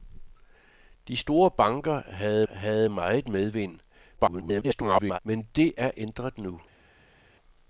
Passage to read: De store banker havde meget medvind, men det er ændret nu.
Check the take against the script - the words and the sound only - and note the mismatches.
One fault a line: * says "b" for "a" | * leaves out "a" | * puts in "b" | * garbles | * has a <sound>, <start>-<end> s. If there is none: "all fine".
* puts in "havde"
* garbles